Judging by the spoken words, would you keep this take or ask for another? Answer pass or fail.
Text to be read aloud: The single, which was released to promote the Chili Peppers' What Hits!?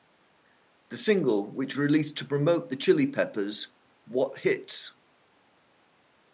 fail